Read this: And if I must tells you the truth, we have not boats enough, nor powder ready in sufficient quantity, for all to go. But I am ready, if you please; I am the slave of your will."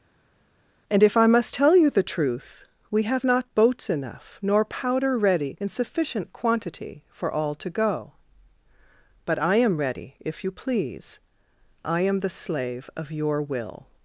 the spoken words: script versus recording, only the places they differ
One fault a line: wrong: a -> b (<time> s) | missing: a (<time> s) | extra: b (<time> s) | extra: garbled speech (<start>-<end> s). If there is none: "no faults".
wrong: tells -> tell (1.5 s)